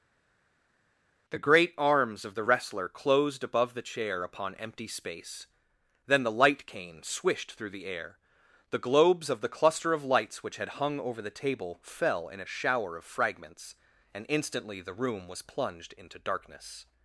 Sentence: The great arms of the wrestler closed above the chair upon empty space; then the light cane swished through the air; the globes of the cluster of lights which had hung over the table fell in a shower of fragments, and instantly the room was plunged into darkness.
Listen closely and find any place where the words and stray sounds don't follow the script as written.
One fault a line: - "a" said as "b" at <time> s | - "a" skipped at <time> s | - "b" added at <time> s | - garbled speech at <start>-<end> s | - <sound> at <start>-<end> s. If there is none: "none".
none